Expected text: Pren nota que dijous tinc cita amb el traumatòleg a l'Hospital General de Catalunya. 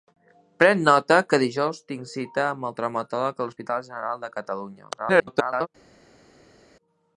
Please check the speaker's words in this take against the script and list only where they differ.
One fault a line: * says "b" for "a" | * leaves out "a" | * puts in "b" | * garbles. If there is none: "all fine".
* garbles